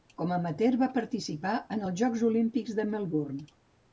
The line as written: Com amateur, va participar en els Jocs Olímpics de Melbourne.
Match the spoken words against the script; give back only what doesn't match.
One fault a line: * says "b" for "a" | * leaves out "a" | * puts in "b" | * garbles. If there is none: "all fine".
all fine